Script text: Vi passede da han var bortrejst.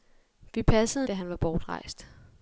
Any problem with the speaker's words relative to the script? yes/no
no